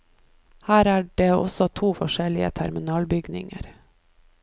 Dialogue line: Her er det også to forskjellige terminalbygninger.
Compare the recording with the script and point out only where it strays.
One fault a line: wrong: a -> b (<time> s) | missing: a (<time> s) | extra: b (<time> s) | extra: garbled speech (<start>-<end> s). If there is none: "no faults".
no faults